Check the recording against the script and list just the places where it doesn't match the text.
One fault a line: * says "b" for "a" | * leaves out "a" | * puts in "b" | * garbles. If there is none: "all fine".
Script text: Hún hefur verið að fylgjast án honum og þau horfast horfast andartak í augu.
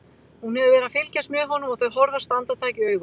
* says "með" for "án"
* leaves out "horfast"